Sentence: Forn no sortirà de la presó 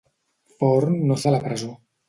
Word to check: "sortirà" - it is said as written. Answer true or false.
false